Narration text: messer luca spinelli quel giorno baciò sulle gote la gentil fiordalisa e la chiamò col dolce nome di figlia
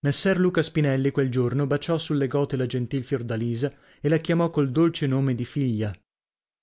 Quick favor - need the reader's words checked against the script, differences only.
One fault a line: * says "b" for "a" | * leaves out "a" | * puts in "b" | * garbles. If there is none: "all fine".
all fine